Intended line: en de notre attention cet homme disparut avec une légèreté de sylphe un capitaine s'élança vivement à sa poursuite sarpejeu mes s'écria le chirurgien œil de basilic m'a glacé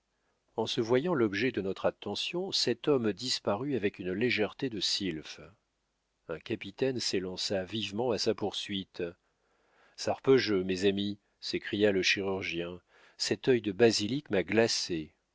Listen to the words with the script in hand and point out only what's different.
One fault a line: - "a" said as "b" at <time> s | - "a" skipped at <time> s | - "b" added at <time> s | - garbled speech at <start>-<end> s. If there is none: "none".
- "se voyant l'objet" added at 0.7 s
- "amis" added at 10.8 s
- "cet" added at 13.2 s